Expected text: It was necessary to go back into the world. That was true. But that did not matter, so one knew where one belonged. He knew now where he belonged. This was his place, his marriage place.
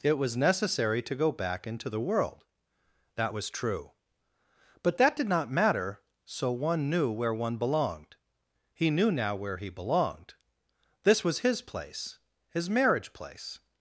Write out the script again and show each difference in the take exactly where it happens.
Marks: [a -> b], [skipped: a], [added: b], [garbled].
It was necessary to go back into the world. That was true. But that did not matter, so one knew where one belonged. He knew now where he belonged. This was his place, his marriage place.